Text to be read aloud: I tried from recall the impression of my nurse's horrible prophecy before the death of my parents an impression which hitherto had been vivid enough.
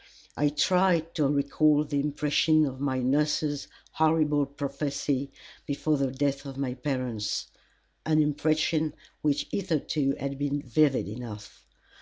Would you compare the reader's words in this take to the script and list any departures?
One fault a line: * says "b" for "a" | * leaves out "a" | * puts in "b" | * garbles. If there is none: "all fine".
* says "to" for "from"